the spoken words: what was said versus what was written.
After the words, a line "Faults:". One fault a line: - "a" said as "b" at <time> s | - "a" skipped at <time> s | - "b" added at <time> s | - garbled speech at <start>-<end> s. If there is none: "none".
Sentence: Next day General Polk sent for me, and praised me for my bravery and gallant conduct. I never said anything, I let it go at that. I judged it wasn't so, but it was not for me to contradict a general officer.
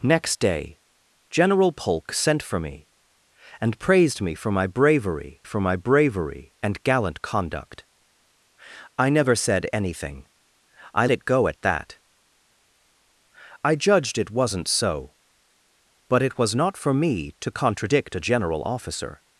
Next day General Polk sent for me, and praised me for my bravery for my bravery and gallant conduct. I never said anything, I it go at that. I judged it wasn't so, but it was not for me to contradict a general officer.
Faults:
- "for my bravery" added at 5.4 s
- "let" skipped at 11.1 s